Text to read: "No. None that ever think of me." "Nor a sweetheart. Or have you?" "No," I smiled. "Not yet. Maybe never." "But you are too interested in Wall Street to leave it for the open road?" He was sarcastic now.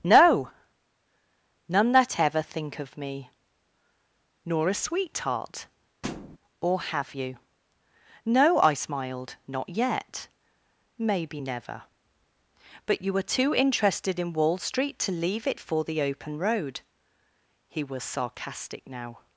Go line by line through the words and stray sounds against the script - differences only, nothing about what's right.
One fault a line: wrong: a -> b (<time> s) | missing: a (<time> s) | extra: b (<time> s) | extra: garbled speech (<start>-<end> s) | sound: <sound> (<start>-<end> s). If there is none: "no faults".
sound: thud (6.0-6.4 s)
wrong: are -> were (13.1 s)